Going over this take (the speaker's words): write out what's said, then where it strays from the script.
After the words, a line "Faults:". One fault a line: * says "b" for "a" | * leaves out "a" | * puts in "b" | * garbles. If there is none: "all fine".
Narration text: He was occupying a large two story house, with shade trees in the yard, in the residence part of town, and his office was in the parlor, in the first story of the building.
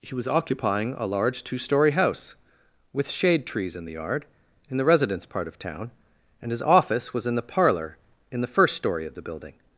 He was occupying a large two story house, with shade trees in the yard, in the residence part of town, and his office was in the parlor, in the first story of the building.
Faults:
all fine